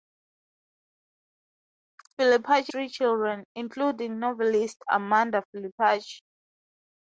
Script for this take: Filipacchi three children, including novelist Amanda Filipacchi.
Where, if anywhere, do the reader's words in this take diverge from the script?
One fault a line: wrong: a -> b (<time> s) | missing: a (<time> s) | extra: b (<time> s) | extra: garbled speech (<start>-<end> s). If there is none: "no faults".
no faults